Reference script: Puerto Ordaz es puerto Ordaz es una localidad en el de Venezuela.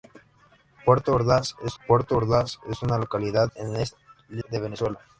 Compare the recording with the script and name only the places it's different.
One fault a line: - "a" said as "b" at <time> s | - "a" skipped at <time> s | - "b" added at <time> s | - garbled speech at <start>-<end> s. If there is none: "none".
none